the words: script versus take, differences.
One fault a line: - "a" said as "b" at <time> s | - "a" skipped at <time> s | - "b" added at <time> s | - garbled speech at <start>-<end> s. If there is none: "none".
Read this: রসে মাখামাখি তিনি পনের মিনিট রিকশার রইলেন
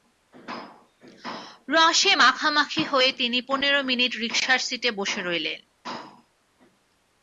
- "হয়ে" added at 2.9 s
- "সিটে বসে" added at 4.7 s